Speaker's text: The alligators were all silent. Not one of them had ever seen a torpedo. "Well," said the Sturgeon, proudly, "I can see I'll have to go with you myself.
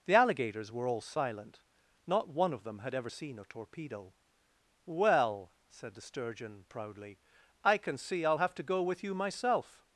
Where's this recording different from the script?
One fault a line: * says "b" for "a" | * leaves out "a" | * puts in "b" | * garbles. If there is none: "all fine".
all fine